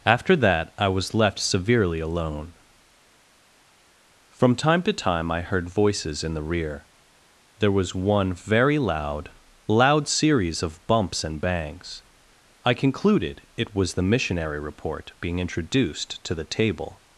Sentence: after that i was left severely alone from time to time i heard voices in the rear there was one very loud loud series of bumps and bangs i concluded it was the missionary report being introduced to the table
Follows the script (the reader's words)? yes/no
yes